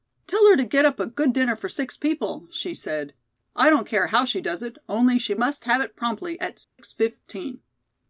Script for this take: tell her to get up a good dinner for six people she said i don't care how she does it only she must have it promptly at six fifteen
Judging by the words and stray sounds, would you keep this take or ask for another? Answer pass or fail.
fail